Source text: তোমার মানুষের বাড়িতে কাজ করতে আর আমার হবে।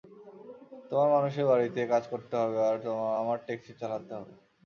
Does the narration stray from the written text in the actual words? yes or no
yes